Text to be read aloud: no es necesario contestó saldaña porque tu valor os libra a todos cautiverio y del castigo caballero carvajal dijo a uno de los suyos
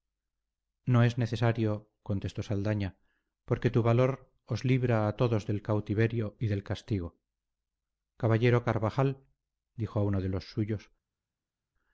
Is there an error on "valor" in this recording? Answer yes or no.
no